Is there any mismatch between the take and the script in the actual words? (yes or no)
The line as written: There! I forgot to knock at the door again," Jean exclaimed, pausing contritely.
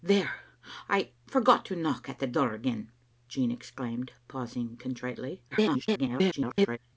yes